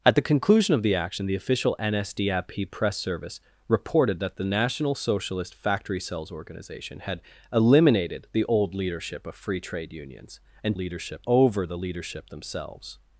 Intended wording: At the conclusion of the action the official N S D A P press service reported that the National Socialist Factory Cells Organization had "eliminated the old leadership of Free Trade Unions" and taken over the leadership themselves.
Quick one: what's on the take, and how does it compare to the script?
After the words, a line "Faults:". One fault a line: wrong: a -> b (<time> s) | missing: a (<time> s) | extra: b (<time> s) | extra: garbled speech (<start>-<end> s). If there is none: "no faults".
At the conclusion of the action the official N S D A P press service reported that the National Socialist Factory Cells Organization had "eliminated the old leadership of Free Trade Unions" and leadership over the leadership themselves.
Faults:
wrong: taken -> leadership (10.7 s)